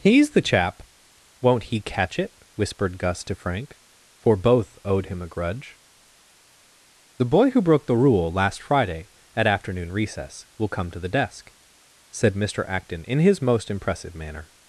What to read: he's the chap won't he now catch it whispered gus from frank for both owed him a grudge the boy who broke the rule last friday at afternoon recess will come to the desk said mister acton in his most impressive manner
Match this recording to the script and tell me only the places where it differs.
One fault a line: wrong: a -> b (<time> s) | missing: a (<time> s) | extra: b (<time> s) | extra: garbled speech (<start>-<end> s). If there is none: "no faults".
missing: now (1.8 s)
wrong: from -> to (3.2 s)